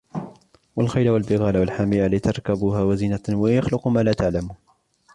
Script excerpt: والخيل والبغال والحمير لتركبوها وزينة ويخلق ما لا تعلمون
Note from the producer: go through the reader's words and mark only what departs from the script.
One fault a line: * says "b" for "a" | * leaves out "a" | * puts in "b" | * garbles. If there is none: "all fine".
all fine